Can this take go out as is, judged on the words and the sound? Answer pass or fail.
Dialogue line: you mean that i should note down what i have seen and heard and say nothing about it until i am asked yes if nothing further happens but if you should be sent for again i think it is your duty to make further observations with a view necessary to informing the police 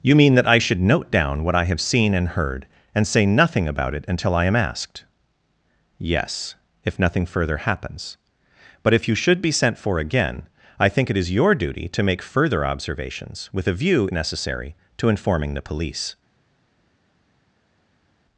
pass